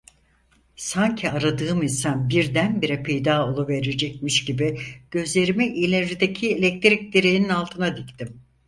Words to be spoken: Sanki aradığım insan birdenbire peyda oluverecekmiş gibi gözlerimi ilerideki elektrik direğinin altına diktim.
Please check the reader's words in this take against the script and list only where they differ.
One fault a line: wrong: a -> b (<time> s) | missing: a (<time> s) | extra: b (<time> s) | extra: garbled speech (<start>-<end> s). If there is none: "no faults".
no faults